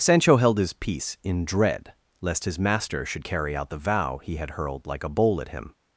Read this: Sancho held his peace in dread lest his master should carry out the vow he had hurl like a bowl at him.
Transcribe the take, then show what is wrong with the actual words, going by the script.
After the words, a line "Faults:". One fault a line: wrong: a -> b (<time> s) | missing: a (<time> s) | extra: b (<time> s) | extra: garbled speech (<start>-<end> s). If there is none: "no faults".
Sancho held his peace in dread lest his master should carry out the vow he had hurled like a bowl at him.
Faults:
wrong: hurl -> hurled (4.5 s)